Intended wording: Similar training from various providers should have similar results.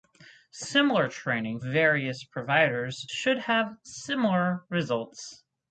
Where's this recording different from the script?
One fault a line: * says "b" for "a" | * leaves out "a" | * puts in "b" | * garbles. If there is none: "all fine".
* leaves out "from"